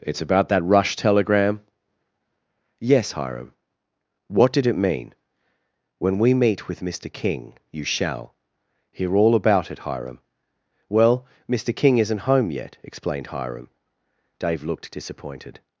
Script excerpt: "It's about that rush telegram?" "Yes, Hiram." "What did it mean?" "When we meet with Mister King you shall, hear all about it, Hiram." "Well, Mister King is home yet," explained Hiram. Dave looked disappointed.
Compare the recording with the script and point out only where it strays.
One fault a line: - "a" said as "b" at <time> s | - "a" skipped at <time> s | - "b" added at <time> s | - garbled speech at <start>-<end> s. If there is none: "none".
- "is" said as "isn't" at 12.0 s